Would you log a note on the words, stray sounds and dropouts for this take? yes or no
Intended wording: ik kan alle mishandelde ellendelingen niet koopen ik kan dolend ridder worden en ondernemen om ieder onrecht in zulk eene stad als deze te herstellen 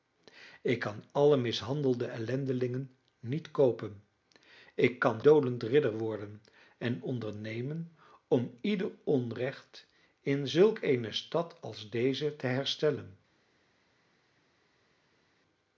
no